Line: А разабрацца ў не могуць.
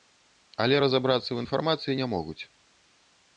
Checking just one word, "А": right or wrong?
wrong